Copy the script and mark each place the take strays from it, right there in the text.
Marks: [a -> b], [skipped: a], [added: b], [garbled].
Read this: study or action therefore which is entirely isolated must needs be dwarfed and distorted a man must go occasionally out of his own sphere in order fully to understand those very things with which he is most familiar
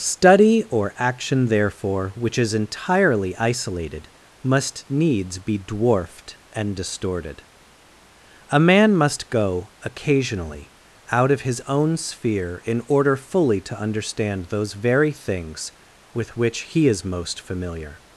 study or action therefore which is entirely isolated must needs be dwarfed and distorted a man must go occasionally out of his own sphere in order fully to understand those very things with which he is most familiar